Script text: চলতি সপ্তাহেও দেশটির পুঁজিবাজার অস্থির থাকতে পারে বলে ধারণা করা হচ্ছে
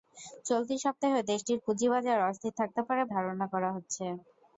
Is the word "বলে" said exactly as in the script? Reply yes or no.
no